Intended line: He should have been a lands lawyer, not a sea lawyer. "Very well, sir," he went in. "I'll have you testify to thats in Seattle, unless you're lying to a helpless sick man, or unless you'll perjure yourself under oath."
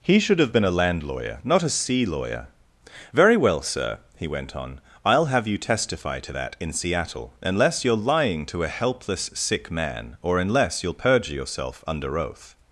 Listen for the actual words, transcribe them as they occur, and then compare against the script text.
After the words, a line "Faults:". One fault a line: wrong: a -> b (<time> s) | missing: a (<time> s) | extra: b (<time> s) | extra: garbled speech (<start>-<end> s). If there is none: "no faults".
He should have been a land lawyer, not a sea lawyer. "Very well, sir," he went on. "I'll have you testify to that in Seattle, unless you're lying to a helpless sick man, or unless you'll perjure yourself under oath."
Faults:
wrong: lands -> land (0.7 s)
wrong: in -> on (4.5 s)
wrong: thats -> that (6.3 s)